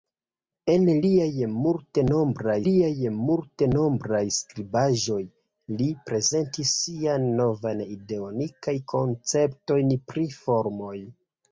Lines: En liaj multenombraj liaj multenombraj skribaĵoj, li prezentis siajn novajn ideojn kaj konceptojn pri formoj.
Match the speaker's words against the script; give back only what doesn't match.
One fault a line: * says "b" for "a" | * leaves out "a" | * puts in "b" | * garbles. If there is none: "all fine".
all fine